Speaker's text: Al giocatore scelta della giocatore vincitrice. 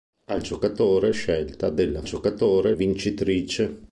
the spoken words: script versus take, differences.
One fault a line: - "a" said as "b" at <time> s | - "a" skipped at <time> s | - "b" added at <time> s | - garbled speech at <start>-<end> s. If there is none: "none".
none